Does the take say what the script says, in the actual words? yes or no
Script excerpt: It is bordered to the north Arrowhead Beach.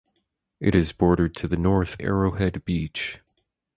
yes